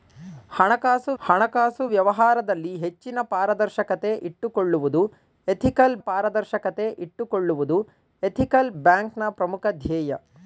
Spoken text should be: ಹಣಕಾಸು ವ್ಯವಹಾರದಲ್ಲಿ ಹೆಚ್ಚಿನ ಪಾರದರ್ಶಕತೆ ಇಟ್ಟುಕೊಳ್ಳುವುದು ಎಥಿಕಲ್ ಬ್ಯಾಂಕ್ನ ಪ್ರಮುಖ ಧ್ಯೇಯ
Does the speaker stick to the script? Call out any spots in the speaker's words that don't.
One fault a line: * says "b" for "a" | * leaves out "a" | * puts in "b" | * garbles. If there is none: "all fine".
* puts in "ಹಣಕಾಸು"
* puts in "ಪಾರದರ್ಶಕತೆ ಇಟ್ಟುಕೊಳ್ಳುವುದು ಎಥಿಕಲ್"